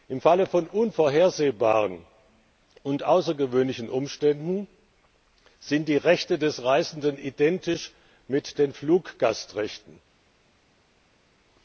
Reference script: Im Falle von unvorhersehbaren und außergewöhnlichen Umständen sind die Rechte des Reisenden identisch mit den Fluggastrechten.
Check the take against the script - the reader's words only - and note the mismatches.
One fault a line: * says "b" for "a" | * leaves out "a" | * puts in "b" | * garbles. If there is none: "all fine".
all fine